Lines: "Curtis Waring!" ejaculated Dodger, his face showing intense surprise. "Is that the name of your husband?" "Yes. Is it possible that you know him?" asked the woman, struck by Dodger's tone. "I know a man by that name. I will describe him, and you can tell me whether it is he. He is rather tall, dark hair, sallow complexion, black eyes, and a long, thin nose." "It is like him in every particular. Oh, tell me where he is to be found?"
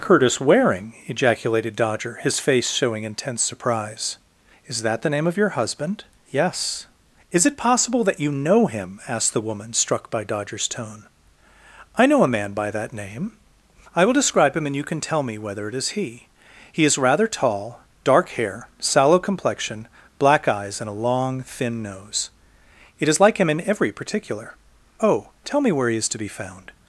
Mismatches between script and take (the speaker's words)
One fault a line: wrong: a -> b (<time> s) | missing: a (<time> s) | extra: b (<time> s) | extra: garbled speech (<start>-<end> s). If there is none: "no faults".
no faults